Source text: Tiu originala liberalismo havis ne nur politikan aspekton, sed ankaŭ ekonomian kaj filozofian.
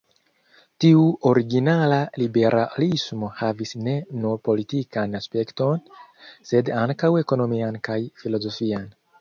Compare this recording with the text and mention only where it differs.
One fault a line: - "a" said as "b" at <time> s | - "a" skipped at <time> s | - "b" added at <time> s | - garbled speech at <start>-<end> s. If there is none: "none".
none